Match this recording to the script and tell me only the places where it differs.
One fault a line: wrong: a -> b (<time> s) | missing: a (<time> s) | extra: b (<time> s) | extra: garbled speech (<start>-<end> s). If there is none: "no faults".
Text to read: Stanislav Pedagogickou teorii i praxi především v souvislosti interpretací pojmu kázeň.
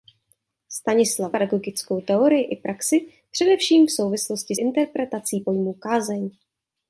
no faults